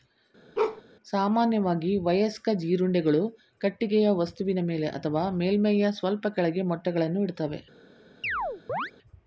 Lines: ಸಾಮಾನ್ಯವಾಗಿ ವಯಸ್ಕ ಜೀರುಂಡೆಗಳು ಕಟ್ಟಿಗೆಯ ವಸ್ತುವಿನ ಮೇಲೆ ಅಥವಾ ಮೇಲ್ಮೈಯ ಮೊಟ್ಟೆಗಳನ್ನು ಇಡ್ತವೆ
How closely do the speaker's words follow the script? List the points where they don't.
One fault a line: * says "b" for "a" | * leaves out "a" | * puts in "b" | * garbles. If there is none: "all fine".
* puts in "ಸ್ವಲ್ಪ ಕೆಳಗೆ"